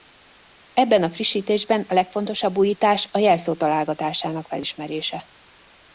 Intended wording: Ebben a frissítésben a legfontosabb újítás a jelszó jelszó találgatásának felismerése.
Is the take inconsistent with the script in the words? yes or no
yes